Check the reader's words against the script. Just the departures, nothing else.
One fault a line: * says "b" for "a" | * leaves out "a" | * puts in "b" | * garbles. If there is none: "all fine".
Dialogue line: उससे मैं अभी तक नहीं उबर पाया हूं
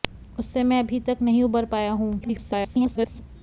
* garbles